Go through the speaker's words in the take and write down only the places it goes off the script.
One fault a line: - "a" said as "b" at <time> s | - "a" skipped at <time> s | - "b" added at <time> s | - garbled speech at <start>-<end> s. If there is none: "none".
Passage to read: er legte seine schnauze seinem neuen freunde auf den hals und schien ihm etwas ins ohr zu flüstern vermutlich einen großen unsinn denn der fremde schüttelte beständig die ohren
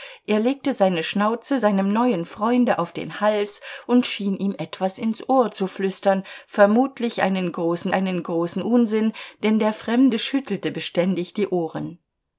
- "einen großen" added at 7.9 s